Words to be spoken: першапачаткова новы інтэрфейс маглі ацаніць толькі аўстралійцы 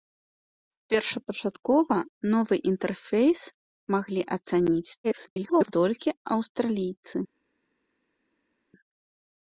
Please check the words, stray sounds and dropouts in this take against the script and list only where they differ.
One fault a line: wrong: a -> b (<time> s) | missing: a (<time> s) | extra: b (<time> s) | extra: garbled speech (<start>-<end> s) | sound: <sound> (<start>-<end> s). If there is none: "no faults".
extra: garbled speech (5.0-5.7 s)